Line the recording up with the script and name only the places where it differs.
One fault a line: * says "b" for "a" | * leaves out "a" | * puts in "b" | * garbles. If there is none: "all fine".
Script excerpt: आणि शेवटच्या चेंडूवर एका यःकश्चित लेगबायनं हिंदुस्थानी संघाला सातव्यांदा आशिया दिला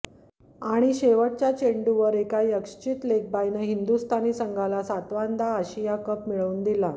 * puts in "कप मिळवून"